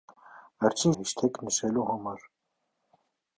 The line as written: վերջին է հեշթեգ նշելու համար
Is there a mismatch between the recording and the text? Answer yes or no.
no